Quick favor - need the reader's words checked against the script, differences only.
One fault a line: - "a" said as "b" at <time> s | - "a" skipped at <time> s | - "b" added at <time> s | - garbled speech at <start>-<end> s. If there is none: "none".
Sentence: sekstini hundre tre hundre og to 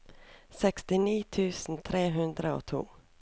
- "hundre" said as "tusen" at 1.4 s